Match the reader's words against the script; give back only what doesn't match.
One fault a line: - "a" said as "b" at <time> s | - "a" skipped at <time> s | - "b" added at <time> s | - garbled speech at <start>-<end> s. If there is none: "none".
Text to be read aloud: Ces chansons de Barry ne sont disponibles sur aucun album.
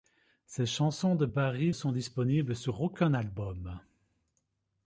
- "ne" skipped at 1.7 s